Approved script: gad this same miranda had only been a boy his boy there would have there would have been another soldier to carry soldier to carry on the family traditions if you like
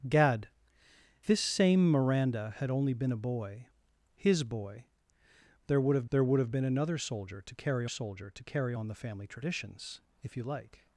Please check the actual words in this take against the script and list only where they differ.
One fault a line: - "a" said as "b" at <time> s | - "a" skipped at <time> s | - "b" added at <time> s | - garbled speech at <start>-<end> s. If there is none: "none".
none